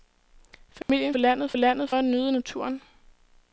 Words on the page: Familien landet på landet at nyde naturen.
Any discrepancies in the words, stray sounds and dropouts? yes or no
yes